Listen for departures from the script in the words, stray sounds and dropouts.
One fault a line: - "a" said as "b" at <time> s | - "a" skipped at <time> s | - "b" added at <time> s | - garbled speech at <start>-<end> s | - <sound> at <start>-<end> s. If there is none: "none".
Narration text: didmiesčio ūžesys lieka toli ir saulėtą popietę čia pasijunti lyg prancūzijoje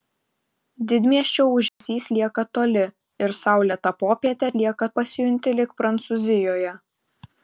- dropout at 1.7-1.8 s
- "čia" said as "lieka" at 4.6 s